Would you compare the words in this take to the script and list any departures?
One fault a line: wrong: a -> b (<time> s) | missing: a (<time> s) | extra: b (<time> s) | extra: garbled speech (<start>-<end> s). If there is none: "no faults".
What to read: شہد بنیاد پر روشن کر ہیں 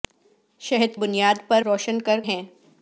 no faults